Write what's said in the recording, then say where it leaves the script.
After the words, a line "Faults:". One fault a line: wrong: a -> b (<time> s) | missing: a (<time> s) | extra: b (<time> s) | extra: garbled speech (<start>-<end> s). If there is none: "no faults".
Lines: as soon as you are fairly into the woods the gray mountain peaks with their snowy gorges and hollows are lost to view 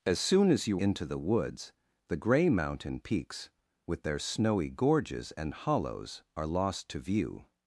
as soon as you into the woods the gray mountain peaks with their snowy gorges and hollows are lost to view
Faults:
missing: are fairly (0.8 s)